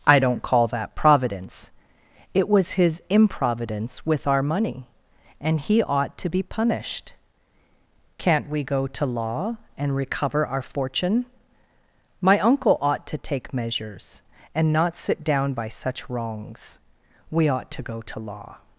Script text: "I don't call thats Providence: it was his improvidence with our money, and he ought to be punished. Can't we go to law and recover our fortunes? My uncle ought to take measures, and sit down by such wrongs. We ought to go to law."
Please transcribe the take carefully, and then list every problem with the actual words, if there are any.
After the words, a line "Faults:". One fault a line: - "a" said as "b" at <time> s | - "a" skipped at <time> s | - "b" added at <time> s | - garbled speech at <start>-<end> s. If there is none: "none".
"I don't call that Providence: it was his improvidence with our money, and he ought to be punished. Can't we go to law and recover our fortune? My uncle ought to take measures, and not sit down by such wrongs. We ought to go to law."
Faults:
- "thats" said as "that" at 0.7 s
- "fortunes" said as "fortune" at 10.6 s
- "not" added at 14.7 s